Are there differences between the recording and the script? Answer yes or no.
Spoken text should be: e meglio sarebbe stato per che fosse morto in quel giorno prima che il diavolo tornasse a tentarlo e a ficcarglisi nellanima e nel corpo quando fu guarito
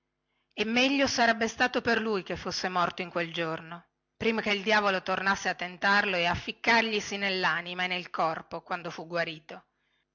yes